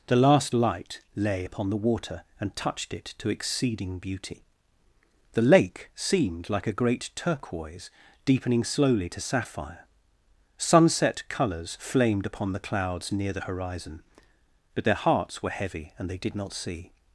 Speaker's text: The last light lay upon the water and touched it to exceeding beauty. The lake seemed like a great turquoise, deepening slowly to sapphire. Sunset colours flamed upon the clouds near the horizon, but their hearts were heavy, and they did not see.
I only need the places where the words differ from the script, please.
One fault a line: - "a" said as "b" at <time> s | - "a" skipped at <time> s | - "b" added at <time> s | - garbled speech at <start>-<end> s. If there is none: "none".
none